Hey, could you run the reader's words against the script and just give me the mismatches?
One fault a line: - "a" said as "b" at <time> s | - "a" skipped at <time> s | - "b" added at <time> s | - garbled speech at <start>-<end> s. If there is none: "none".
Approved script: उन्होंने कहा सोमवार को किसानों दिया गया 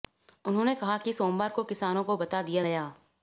- "कि" added at 1.0 s
- "को बता" added at 2.0 s